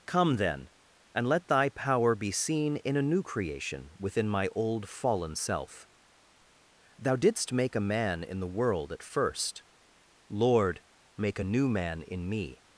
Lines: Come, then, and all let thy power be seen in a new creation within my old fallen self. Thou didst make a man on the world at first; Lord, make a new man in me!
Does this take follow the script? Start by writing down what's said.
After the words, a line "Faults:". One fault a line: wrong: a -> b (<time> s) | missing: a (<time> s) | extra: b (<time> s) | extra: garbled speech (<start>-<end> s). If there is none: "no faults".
Come, then, and let thy power be seen in a new creation within my old fallen self. Thou didst make a man in the world at first; Lord, make a new man in me!
Faults:
missing: all (1.3 s)
wrong: on -> in (8.2 s)